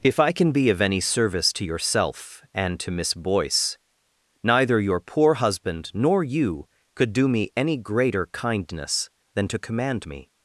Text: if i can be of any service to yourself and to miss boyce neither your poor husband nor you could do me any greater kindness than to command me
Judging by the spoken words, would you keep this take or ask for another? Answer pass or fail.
pass